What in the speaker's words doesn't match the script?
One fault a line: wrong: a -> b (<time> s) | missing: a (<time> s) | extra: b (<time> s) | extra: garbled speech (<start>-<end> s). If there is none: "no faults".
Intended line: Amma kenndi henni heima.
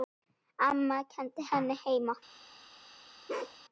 no faults